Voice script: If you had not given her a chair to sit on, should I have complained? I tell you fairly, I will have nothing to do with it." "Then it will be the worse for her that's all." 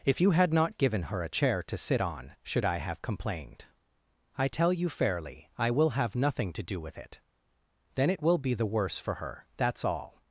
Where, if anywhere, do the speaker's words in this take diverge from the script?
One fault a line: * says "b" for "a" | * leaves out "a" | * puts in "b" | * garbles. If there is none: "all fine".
all fine